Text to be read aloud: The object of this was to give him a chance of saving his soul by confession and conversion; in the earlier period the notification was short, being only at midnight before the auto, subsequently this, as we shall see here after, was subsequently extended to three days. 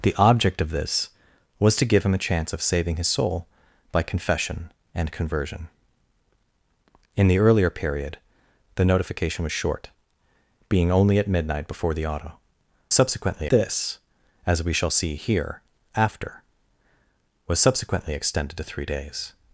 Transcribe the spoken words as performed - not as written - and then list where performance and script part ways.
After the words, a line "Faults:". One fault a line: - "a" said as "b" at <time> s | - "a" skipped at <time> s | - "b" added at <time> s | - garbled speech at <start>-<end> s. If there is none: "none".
The object of this was to give him a chance of saving his soul by confession and conversion; in the earlier period the notification was short, being only at midnight before the auto, subsequently this, as we shall see here after, was subsequently extended to three days.
Faults:
none